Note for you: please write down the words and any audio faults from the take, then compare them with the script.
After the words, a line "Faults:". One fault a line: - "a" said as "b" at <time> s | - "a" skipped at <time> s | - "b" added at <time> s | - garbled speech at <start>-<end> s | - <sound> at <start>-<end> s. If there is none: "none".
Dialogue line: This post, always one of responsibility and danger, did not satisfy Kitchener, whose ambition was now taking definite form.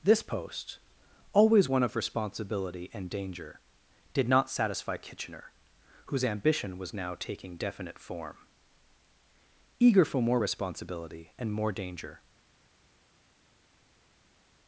This post, always one of responsibility and danger, did not satisfy Kitchener, whose ambition was now taking definite form. Eager for more responsibility and more danger
Faults:
- "Eager for more responsibility and more danger" added at 9.8 s